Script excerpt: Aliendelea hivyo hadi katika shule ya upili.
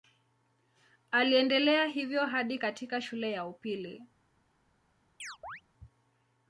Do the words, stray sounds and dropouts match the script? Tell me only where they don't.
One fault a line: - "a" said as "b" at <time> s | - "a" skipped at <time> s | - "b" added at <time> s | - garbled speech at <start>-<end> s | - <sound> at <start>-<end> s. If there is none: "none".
- chirp at 5.2-5.6 s